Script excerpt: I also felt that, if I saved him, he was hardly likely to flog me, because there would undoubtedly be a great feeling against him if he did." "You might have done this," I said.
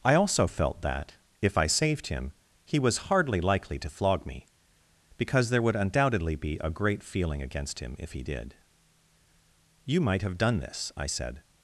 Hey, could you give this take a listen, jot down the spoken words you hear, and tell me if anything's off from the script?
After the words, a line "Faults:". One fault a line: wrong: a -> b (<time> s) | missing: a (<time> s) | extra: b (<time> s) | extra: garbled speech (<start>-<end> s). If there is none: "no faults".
I also felt that, if I saved him, he was hardly likely to flog me, because there would undoubtedly be a great feeling against him if he did." "You might have done this," I said.
Faults:
no faults